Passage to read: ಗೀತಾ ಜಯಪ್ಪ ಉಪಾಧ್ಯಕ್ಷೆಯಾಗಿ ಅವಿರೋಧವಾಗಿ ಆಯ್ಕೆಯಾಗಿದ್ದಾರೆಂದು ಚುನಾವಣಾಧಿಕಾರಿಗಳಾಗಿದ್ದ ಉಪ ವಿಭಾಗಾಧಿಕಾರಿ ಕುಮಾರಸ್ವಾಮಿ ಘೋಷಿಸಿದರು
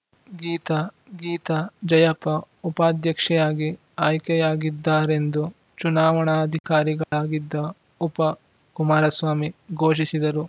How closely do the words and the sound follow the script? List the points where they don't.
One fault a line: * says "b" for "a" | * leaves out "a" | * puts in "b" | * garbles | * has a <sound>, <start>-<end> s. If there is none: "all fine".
* puts in "ಗೀತಾ"
* leaves out "ಅವಿರೋಧವಾಗಿ"
* has a dropout, 7.0-7.1 s
* leaves out "ವಿಭಾಗಾಧಿಕಾರಿ"